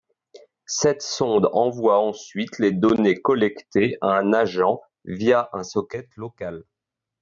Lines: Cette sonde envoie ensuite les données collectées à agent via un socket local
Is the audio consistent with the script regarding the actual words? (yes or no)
no